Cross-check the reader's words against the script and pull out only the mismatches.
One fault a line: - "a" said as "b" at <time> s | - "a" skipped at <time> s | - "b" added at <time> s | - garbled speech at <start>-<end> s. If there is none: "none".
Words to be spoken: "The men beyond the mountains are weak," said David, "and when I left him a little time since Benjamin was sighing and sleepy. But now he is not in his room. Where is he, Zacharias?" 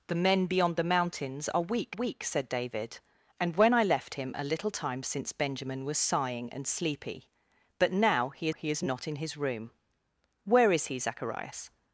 - "weak" added at 1.9 s
- "he" added at 8.5 s